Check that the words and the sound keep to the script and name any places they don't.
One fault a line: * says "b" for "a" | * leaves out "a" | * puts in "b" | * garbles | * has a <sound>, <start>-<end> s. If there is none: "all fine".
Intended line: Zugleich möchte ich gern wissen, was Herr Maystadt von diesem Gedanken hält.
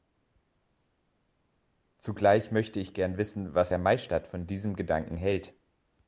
all fine